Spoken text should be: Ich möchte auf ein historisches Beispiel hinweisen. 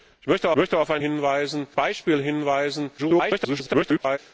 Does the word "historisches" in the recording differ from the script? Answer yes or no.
yes